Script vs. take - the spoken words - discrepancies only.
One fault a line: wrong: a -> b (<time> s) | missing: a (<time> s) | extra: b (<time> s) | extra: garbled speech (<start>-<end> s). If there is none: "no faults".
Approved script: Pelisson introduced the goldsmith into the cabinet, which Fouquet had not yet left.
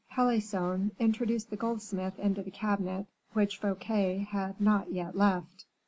no faults